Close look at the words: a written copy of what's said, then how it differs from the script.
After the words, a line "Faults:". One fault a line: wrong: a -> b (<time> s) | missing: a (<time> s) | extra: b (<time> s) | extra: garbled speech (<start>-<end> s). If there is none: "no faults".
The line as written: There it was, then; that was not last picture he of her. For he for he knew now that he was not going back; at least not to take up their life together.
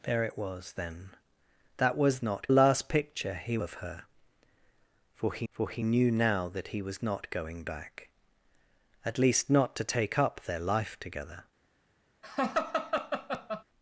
There it was, then; that was not last picture he of her. For he for he knew now that he was not going back; at least not to take up their life together.
Faults:
no faults